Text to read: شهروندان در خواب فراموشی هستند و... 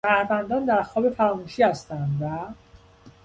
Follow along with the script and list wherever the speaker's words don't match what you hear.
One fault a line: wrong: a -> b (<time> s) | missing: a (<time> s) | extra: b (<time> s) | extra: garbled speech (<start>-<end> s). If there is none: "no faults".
no faults